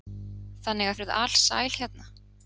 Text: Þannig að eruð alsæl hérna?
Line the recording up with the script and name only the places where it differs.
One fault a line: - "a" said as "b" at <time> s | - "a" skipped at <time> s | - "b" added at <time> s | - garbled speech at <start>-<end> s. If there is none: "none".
none